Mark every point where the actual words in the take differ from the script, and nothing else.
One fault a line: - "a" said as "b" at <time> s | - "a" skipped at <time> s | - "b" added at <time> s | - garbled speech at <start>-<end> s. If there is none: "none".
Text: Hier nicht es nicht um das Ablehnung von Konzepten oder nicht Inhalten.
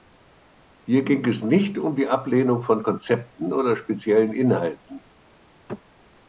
- "nicht" said as "ging" at 1.0 s
- "das" said as "die" at 1.9 s
- "nicht" said as "speziellen" at 3.7 s